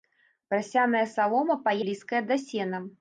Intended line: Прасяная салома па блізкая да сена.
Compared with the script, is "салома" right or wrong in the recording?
right